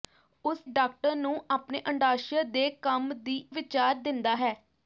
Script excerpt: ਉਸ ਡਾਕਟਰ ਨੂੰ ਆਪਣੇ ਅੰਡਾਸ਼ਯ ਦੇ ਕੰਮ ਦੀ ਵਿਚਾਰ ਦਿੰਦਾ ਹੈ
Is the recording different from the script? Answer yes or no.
no